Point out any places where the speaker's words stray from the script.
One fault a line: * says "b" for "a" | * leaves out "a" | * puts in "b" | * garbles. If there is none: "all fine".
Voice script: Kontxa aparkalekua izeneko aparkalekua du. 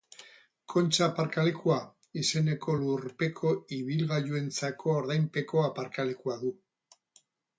* puts in "lurpeko ibilgailuentzako ordainpeko"